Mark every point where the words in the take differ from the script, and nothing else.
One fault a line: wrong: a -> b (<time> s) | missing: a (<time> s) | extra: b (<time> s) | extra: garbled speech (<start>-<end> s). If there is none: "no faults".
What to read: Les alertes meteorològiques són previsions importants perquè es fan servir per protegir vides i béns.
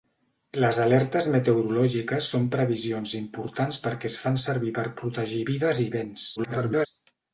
extra: garbled speech (6.4-6.9 s)